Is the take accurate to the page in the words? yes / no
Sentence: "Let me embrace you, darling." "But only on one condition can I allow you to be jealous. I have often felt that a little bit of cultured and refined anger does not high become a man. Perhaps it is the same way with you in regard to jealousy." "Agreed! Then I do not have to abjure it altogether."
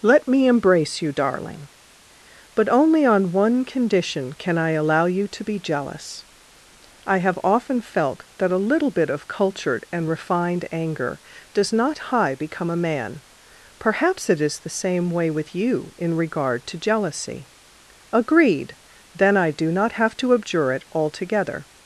yes